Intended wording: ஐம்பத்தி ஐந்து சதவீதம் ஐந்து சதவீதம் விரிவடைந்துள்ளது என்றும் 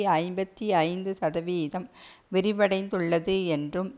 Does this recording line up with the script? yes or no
no